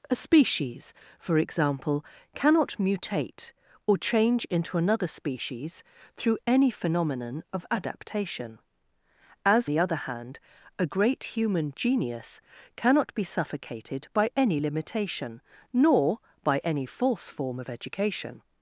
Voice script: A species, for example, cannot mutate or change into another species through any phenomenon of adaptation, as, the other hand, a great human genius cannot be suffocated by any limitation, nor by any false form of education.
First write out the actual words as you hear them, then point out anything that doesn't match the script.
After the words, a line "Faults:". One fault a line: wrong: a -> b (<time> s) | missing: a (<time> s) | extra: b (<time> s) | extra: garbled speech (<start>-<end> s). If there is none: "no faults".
A species, for example, cannot mutate or change into another species through any phenomenon of adaptation, as, the other hand, a great human genius cannot be suffocated by any limitation, nor by any false form of education.
Faults:
no faults